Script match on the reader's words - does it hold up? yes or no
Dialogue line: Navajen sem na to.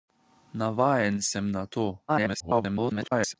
no